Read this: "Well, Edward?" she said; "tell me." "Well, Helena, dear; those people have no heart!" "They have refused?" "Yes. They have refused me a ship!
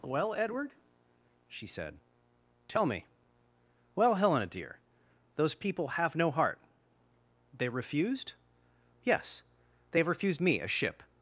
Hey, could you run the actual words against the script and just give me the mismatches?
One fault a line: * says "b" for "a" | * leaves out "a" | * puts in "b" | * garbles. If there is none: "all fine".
* leaves out "have"